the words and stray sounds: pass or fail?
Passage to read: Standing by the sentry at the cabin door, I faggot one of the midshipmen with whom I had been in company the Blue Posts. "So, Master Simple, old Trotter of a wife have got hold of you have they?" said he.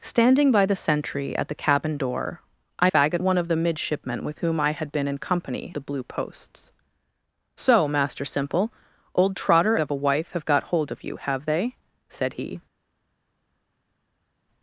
pass